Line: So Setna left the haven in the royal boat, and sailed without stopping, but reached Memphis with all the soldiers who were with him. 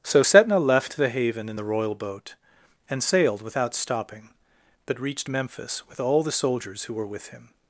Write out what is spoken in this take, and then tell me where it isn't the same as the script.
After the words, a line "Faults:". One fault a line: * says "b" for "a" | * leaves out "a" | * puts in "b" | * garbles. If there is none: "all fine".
So Setna left the haven in the royal boat, and sailed without stopping, but reached Memphis with all the soldiers who were with him.
Faults:
all fine